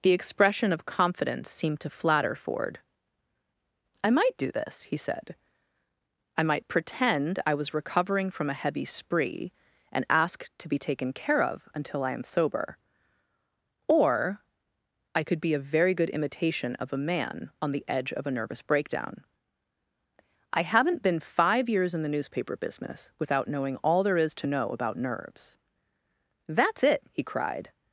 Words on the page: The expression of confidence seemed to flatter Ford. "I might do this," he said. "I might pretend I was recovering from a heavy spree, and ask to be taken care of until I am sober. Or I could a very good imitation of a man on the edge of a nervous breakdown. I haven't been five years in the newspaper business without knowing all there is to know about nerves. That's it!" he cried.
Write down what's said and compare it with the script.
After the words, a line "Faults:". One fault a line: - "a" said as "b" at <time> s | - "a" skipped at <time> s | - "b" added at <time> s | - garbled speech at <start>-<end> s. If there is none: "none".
The expression of confidence seemed to flatter Ford. "I might do this," he said. "I might pretend I was recovering from a heavy spree, and ask to be taken care of until I am sober. Or I could be a very good imitation of a man on the edge of a nervous breakdown. I haven't been five years in the newspaper business without knowing all there is to know about nerves. That's it!" he cried.
Faults:
- "be" added at 15.4 s